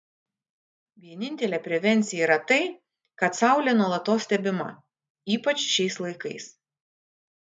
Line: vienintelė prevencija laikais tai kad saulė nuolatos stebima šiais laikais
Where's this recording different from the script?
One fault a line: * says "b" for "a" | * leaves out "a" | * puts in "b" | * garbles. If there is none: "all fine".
* says "yra" for "laikais"
* puts in "ypač"